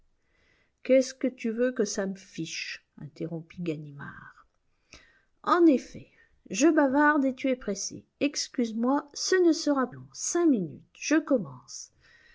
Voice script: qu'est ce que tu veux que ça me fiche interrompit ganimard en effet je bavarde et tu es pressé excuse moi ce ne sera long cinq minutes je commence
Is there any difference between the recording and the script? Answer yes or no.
no